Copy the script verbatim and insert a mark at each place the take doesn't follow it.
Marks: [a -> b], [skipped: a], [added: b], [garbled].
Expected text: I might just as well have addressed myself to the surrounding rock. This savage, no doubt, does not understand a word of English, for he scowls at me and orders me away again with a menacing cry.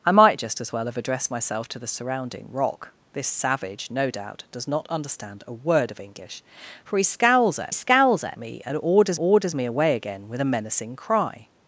I might just as well have addressed myself to the surrounding rock. This savage, no doubt, does not understand a word of English, for he scowls at [added: scowls at] me and orders [added: orders] me away again with a menacing cry.